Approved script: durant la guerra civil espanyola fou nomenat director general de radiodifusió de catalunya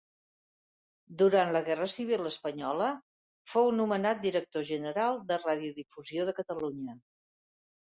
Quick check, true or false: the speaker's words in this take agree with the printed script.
true